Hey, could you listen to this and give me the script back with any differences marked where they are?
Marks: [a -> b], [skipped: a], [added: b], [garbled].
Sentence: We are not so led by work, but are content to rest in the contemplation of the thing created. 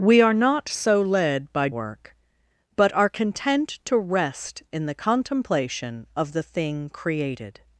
We are not so led by work, but are content to rest in the contemplation of the thing created.